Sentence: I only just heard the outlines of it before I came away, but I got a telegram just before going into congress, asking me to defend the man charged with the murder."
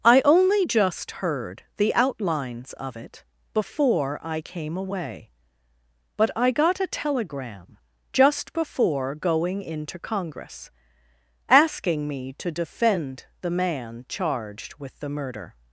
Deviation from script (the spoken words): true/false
false